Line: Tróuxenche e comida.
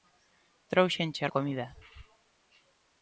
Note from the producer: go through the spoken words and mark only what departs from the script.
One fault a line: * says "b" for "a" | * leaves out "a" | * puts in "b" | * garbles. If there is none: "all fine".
all fine